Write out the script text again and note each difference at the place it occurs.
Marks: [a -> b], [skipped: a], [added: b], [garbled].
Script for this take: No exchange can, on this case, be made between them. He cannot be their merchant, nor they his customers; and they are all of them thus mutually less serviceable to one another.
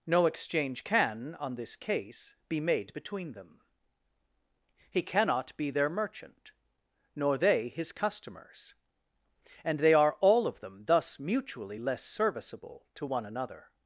No exchange can, on this case, be made between them. He cannot be their merchant, nor they his customers; and they are all of them thus mutually less serviceable to one another.